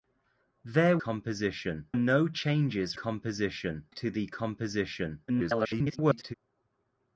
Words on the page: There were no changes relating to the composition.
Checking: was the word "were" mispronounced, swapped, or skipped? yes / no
yes